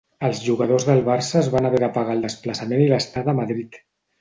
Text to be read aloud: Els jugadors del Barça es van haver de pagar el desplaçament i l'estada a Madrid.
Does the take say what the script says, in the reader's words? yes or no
yes